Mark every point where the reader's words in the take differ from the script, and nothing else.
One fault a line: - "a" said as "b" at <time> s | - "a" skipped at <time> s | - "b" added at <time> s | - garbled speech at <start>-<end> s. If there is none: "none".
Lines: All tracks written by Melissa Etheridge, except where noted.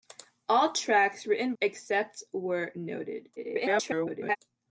- "by Melissa Etheridge" skipped at 1.5 s
- garbled speech at 3.4-4.4 s